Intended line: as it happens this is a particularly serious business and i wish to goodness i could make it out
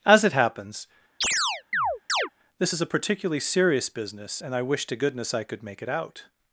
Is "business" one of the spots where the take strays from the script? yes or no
no